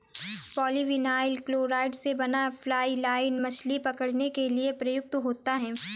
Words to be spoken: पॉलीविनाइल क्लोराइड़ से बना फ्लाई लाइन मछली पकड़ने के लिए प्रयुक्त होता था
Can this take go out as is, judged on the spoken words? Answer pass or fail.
fail